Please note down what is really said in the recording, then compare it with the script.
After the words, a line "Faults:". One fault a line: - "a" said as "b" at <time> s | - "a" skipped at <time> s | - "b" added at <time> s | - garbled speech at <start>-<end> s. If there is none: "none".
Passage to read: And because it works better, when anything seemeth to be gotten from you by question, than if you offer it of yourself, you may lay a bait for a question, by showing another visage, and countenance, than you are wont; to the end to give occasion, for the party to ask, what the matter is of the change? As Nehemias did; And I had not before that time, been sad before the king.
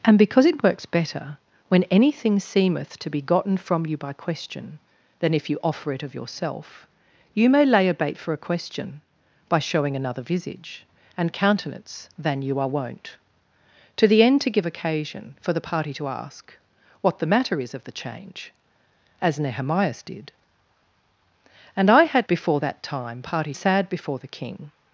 And because it works better, when anything seemeth to be gotten from you by question, than if you offer it of yourself, you may lay a bait for a question, by showing another visage, and countenance, than you are wont; to the end to give occasion, for the party to ask, what the matter is of the change? As Nehemias did; And I had before that time, party sad before the king.
Faults:
- "not" skipped at 22.3 s
- "been" said as "party" at 23.2 s